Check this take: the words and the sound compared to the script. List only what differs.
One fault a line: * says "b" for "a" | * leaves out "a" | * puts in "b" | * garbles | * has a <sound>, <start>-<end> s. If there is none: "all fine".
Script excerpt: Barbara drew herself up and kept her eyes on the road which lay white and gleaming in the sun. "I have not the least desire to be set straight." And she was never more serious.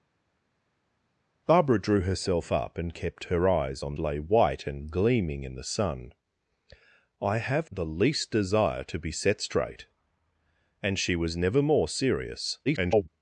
* leaves out "the road which"
* leaves out "not"
* garbles